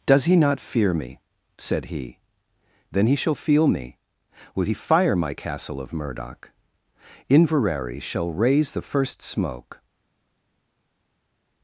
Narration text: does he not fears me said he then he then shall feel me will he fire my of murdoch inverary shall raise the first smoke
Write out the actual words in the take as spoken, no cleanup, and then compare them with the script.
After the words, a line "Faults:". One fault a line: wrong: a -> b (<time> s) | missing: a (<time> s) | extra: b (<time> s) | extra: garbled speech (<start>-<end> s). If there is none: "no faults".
does he not fear me said he then he shall feel me will he fire my castle of murdoch inverary shall raise the first smoke
Faults:
wrong: fears -> fear (0.6 s)
missing: then (3.1 s)
extra: castle (5.3 s)